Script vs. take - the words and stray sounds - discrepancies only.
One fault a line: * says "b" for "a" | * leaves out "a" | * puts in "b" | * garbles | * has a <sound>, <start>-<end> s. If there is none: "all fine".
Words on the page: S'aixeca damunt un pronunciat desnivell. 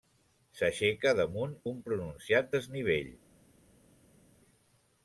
all fine